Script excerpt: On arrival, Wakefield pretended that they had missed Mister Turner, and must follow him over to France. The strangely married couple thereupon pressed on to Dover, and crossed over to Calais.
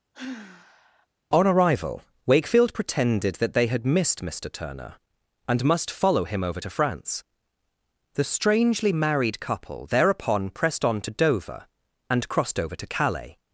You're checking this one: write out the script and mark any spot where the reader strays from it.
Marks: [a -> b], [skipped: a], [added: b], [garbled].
On arrival, Wakefield pretended that they had missed Mister Turner, and must follow him over to France. The strangely married couple thereupon pressed on to Dover, and crossed over to Calais.